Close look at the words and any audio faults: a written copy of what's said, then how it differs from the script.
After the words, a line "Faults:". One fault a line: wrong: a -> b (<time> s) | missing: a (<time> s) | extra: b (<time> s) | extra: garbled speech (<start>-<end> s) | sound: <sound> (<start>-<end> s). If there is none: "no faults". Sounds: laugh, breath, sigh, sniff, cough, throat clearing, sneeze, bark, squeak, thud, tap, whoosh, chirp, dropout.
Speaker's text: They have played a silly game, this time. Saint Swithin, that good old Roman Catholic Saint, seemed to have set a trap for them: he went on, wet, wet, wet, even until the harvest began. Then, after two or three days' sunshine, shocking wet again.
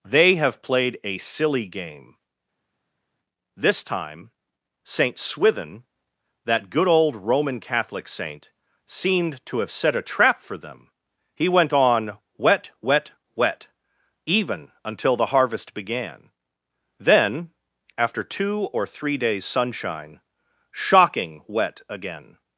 They have played a silly game, this time. Saint Swithin, that good old Roman Catholic Saint, seemed to have set a trap for them: he went on, wet, wet, wet, even until the harvest began. Then, after two or three days' sunshine, shocking wet again.
Faults:
no faults